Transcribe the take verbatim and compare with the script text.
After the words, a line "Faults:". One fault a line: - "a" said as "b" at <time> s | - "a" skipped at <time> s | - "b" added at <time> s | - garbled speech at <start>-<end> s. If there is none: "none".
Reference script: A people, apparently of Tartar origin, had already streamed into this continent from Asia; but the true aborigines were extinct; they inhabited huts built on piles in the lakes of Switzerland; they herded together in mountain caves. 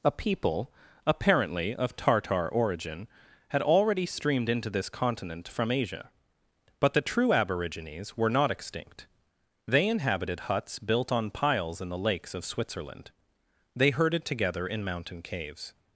A people, apparently of Tartar origin, had already streamed into this continent from Asia; but the true aborigines were not extinct; they inhabited huts built on piles in the lakes of Switzerland; they herded together in mountain caves.
Faults:
- "not" added at 8.3 s